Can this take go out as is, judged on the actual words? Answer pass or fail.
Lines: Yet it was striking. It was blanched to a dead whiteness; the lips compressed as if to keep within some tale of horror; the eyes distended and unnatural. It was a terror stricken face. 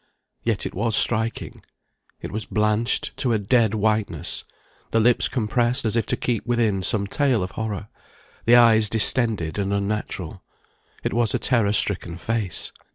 pass